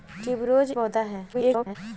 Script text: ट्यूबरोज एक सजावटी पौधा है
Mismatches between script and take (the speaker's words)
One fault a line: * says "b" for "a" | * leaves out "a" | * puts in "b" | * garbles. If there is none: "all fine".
* leaves out "एक सजावटी"
* garbles